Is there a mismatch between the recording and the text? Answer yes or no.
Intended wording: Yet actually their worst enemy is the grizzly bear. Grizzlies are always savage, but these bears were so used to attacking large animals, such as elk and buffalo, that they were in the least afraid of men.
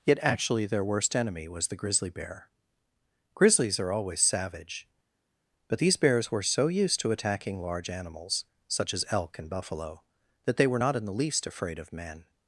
yes